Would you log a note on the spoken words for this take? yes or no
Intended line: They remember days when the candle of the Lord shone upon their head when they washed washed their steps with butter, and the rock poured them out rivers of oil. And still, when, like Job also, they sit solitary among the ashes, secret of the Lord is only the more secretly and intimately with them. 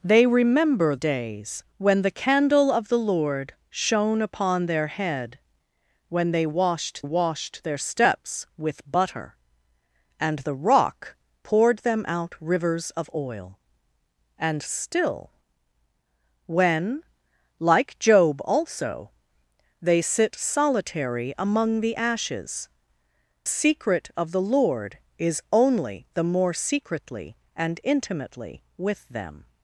no